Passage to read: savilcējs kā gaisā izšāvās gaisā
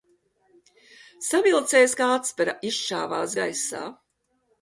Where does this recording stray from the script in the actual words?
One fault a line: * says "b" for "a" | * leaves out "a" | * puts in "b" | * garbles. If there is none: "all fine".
* says "atspere" for "gaisā"